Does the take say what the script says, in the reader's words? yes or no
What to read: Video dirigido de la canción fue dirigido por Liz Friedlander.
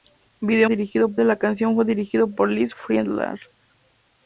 yes